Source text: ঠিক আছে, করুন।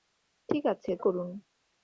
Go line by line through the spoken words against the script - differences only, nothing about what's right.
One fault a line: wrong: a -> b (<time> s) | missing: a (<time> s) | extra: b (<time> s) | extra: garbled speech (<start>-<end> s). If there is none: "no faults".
no faults